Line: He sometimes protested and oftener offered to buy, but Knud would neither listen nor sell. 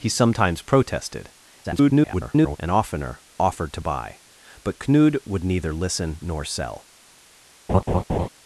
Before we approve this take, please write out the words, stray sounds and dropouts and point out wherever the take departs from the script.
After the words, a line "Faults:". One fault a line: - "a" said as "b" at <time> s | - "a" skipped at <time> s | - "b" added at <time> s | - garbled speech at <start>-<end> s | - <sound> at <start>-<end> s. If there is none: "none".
He sometimes protested [garbled] and oftener offered to buy, but Knud would neither listen nor sell.
Faults:
- garbled speech at 1.6-2.6 s
- laugh at 7.7-8.3 s